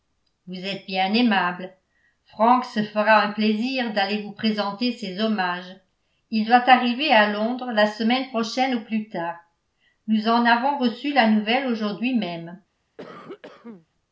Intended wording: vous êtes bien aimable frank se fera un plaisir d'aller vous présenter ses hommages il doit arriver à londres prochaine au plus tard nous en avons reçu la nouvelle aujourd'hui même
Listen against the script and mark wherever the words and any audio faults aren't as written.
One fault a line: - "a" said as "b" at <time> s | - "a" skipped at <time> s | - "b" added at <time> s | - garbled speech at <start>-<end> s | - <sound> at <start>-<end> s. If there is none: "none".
- "la semaine" added at 7.7 s
- cough at 13.0-13.9 s